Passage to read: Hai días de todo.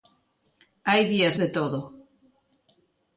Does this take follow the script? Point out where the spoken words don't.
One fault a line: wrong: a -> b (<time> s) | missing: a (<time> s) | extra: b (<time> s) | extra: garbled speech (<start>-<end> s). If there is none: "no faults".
no faults